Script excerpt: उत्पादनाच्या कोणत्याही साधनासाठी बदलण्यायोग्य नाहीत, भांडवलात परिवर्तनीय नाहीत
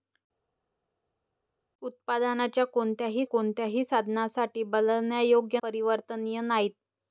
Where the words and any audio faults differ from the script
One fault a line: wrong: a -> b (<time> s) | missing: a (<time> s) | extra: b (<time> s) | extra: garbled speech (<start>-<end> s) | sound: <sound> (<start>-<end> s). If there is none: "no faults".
extra: कोणत्याही (3.2 s)
missing: नाहीत भांडवलात (5.6 s)